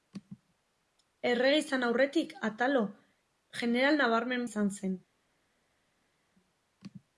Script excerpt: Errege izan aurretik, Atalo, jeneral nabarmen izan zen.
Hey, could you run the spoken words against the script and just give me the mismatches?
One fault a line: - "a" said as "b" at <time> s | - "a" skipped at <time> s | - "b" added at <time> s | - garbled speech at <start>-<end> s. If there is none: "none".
none